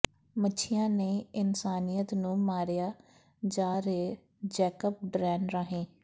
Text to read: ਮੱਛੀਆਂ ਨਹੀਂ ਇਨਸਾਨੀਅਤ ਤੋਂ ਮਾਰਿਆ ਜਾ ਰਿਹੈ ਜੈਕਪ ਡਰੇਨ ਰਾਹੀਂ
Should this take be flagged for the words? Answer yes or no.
yes